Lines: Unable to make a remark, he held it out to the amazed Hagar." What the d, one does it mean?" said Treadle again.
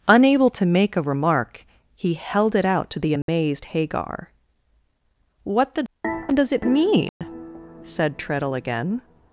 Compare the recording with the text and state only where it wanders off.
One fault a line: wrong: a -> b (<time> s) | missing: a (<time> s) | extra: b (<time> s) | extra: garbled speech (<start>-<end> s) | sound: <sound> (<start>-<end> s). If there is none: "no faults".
sound: dropout (3.2-3.3 s)
missing: one (6.3 s)
sound: dropout (7.1-7.2 s)